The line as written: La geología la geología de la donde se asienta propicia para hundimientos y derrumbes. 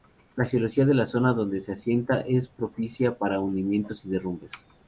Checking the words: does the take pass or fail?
fail